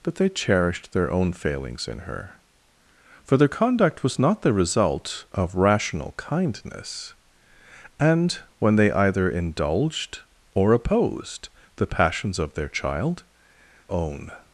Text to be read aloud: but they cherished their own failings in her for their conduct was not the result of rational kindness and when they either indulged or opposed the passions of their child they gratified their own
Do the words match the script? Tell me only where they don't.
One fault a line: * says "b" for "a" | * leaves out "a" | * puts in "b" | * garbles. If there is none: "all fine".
* leaves out "they gratified their"